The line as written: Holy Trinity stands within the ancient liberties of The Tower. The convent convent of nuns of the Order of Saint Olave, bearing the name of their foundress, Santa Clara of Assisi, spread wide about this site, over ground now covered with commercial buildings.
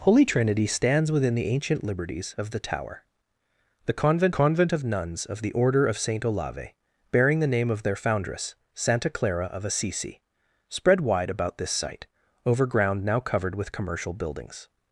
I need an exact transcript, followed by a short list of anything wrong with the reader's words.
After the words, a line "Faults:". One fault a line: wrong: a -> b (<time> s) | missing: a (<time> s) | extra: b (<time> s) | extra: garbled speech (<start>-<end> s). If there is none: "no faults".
Holy Trinity stands within the ancient liberties of The Tower. The convent convent of nuns of the Order of Saint Olave, bearing the name of their foundress, Santa Clara of Assisi, spread wide about this site, over ground now covered with commercial buildings.
Faults:
no faults